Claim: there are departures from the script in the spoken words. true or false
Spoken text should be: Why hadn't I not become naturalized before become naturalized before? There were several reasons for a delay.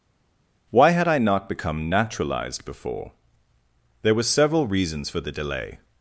true